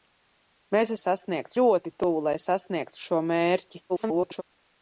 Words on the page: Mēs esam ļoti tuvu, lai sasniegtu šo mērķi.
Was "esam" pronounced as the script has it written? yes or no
no